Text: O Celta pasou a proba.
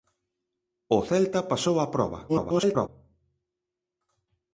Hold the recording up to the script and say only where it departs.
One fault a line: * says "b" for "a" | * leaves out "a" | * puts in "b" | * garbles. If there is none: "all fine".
* garbles